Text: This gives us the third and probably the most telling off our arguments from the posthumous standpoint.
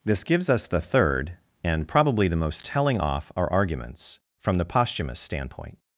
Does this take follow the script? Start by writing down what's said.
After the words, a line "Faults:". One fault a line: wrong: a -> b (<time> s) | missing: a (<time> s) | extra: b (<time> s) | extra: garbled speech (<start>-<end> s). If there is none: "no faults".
This gives us the third and probably the most telling off our arguments from the posthumous standpoint.
Faults:
no faults